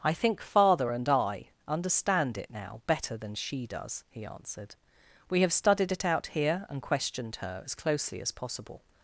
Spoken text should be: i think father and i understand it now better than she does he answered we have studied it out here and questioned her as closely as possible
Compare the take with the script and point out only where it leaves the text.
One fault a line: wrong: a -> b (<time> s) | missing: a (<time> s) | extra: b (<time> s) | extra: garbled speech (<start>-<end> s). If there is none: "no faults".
no faults